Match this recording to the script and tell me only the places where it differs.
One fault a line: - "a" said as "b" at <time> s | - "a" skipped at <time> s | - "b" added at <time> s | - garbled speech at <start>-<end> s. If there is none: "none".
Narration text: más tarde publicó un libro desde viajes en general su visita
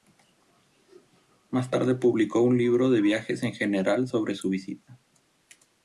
- "desde" said as "de" at 2.9 s
- "sobre" added at 4.1 s